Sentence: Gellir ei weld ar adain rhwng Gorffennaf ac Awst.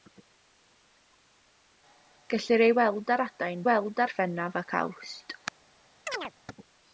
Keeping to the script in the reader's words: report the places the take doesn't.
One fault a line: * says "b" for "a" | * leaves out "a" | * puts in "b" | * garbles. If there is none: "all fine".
* says "weld" for "rhwng"